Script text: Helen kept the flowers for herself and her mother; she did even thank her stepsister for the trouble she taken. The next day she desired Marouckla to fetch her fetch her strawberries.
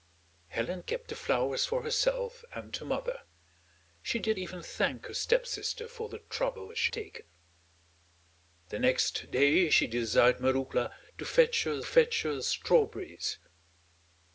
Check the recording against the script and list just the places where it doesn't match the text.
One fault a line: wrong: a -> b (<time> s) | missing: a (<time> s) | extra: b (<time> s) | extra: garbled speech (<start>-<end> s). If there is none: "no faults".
no faults